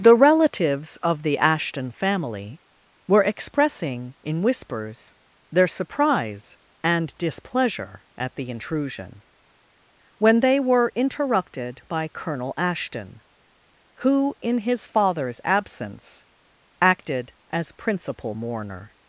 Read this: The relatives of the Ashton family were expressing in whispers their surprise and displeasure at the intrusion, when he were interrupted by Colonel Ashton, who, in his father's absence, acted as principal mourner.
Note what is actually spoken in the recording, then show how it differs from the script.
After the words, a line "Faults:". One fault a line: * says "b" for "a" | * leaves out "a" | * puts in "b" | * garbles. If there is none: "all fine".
The relatives of the Ashton family were expressing in whispers their surprise and displeasure at the intrusion, when they were interrupted by Colonel Ashton, who, in his father's absence, acted as principal mourner.
Faults:
* says "they" for "he"